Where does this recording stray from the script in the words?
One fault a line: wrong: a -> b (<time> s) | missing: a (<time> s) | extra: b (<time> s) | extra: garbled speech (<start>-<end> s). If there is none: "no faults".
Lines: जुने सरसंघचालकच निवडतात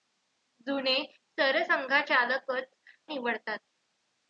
no faults